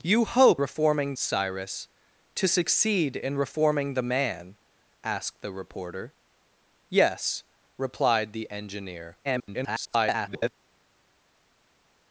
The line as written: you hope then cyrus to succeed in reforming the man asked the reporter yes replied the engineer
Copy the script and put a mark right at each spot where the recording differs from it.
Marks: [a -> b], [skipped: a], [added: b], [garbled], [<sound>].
you hope [then -> reforming] cyrus to succeed in reforming the man asked the reporter yes replied the engineer [garbled]